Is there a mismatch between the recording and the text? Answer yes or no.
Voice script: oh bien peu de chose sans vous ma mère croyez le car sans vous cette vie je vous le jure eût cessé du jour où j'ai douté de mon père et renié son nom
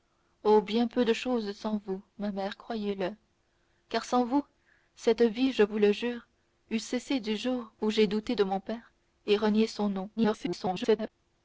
yes